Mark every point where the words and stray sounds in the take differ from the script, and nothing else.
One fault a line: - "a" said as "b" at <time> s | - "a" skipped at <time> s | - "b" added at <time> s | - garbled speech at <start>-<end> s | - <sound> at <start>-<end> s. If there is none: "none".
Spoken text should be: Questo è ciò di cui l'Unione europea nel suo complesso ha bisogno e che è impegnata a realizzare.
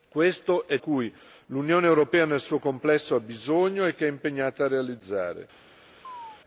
- "ciò di" skipped at 0.8 s
- chirp at 6.0-6.4 s